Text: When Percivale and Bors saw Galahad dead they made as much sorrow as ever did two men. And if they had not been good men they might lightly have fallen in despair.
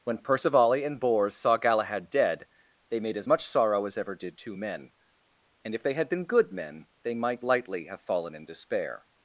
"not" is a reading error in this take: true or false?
true